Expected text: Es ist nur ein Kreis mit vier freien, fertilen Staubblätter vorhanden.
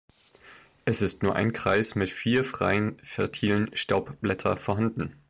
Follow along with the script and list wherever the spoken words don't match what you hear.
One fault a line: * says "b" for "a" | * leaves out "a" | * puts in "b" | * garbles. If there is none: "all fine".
all fine